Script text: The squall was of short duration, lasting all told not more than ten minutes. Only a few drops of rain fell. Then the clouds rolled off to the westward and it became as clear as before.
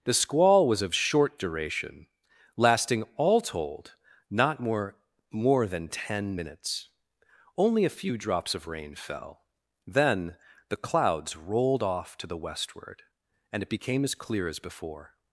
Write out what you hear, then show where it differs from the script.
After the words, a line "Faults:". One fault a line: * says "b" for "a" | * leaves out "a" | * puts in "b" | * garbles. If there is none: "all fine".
The squall was of short duration, lasting all told not more more than ten minutes. Only a few drops of rain fell. Then the clouds rolled off to the westward and it became as clear as before.
Faults:
* puts in "more"